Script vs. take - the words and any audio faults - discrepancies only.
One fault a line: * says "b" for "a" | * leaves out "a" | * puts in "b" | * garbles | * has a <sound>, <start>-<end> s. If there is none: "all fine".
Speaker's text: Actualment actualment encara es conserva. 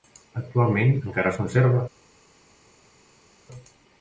* leaves out "actualment"